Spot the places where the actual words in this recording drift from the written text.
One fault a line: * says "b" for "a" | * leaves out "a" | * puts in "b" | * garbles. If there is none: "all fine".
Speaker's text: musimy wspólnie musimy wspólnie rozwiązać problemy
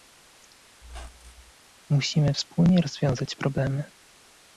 * leaves out "musimy wspólnie"